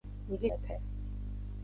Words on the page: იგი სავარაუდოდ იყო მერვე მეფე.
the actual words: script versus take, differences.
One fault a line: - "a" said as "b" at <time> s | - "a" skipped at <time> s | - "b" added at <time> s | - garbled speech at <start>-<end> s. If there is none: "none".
- "სავარაუდოდ იყო მერვე" skipped at 0.5 s